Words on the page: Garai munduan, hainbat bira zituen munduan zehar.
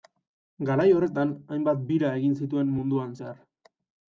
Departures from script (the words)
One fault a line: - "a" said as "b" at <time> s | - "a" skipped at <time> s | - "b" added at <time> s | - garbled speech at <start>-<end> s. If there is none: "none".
- "munduan" said as "horretan" at 0.9 s
- "egin" added at 2.2 s